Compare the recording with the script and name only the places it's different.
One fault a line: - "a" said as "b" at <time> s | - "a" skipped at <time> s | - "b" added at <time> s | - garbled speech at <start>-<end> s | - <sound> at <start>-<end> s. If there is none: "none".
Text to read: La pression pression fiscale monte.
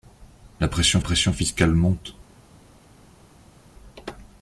none